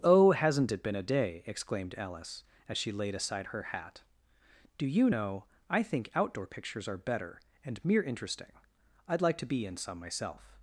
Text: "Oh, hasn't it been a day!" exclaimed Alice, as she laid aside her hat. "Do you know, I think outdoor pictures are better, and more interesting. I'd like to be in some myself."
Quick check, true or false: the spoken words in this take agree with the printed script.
false